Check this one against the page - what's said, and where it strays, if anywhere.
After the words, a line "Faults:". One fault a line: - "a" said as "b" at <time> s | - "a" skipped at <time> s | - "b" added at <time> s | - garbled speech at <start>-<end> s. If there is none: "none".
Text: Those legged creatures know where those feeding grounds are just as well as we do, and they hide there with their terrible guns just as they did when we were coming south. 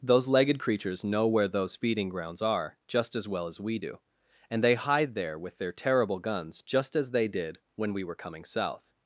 Those legged creatures know where those feeding grounds are just as well as we do, and they hide there with their terrible guns just as they did when we were coming south.
Faults:
none